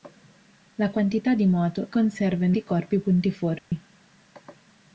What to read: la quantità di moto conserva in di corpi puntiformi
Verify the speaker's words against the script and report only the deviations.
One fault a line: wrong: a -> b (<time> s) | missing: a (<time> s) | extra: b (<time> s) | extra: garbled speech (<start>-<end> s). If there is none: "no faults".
no faults